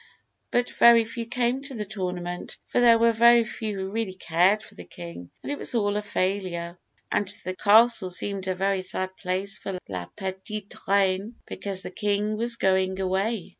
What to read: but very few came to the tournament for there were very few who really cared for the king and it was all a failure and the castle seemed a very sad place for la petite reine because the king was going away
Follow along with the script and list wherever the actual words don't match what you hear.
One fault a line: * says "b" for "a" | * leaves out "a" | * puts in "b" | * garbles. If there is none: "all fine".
all fine